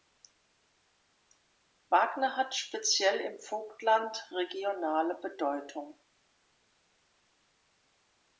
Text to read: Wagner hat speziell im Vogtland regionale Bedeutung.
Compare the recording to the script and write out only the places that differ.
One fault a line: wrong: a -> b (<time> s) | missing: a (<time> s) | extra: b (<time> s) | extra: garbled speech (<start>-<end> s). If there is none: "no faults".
no faults